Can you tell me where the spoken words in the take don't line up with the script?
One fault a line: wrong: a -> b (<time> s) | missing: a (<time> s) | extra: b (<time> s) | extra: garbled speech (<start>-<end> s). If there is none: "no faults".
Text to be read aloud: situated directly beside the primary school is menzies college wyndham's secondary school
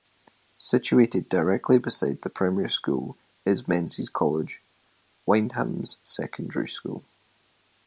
no faults